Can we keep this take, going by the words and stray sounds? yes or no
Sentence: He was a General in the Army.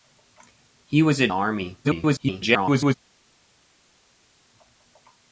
no